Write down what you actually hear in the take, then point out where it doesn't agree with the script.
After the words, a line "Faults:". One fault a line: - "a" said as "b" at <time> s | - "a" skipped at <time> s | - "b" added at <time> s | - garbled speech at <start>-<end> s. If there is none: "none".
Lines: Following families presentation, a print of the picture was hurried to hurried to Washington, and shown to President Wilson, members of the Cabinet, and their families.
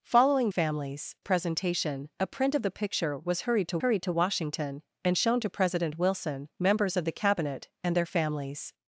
Following families presentation, a print of the picture was hurried to hurried to Washington, and shown to President Wilson, members of the Cabinet, and their families.
Faults:
none